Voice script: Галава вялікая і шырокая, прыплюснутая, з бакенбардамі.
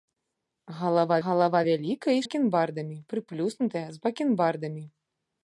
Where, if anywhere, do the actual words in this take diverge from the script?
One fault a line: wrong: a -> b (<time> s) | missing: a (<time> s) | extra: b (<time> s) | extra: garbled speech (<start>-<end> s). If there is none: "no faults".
extra: галава (1.2 s)
wrong: шырокая -> бакенбардамі (2.2 s)